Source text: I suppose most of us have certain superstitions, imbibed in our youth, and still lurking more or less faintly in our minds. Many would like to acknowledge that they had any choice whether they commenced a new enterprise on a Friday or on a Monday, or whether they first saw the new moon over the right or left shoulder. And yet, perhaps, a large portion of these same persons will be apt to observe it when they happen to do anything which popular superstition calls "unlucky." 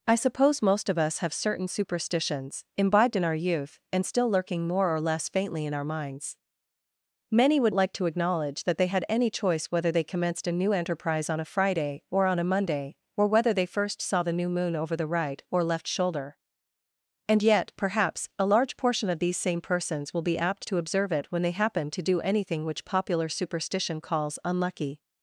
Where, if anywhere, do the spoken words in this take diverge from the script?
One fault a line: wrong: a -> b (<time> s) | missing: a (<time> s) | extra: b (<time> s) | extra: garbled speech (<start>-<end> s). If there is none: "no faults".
no faults